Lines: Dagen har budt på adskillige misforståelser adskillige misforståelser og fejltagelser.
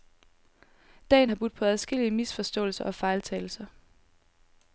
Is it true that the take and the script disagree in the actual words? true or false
true